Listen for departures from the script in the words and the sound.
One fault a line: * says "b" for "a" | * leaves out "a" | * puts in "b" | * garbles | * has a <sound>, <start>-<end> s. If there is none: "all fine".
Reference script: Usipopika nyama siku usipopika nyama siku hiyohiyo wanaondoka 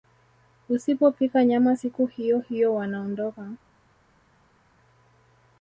* leaves out "usipopika nyama siku"